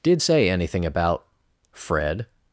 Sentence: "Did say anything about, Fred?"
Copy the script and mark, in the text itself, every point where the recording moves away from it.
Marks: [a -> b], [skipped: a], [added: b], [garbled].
"Did say anything about, Fred?"